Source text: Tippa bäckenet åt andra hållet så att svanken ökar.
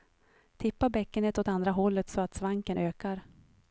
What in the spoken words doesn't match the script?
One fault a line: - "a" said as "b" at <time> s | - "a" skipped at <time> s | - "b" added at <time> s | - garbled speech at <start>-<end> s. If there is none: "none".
none